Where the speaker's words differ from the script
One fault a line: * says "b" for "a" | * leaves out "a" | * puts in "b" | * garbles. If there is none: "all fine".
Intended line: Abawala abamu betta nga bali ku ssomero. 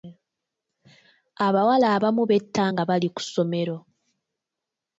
all fine